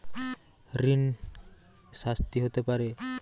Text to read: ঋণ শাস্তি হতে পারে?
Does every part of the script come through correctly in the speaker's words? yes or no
yes